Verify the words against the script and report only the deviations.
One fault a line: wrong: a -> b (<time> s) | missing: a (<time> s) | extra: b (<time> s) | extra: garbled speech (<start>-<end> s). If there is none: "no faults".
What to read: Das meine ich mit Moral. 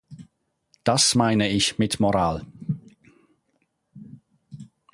no faults